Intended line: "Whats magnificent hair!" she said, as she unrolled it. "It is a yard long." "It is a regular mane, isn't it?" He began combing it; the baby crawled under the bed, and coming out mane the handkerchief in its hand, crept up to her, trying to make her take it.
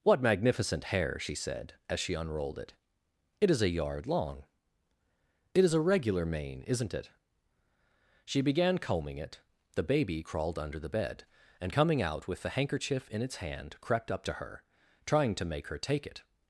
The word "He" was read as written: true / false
false